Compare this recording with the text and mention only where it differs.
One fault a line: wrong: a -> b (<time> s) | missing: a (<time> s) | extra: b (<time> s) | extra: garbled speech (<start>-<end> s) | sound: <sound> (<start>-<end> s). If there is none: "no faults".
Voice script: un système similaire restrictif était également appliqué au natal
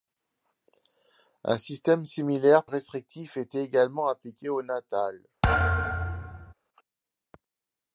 sound: thud (5.4-6.5 s)